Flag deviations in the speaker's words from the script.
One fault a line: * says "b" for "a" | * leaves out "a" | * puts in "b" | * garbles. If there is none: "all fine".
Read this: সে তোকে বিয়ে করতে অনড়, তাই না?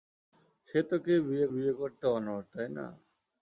* puts in "বিয়ে"